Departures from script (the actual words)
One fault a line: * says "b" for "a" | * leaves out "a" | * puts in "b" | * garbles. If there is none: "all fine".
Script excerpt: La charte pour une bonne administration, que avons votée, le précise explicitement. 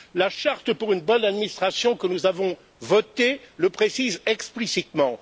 * puts in "nous"